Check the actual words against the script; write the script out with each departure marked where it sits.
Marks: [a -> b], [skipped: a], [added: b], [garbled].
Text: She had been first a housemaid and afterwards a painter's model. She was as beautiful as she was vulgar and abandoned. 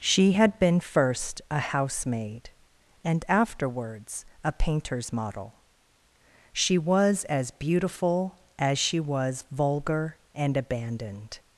She had been first a housemaid and afterwards a painter's model. She was as beautiful as she was vulgar and abandoned.